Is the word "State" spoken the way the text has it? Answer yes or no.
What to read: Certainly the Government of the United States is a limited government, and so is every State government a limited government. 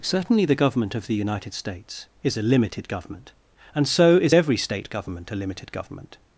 yes